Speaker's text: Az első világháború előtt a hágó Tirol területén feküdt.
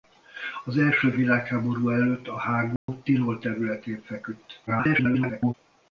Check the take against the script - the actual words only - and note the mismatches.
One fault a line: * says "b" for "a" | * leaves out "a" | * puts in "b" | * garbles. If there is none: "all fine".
* garbles